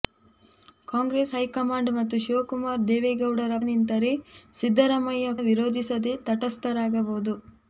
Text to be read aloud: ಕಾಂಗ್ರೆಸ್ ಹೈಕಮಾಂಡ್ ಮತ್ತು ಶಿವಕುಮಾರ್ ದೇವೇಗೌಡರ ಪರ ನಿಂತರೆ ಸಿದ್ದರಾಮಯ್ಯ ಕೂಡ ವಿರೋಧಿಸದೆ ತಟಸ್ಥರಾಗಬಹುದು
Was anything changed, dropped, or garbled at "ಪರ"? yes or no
yes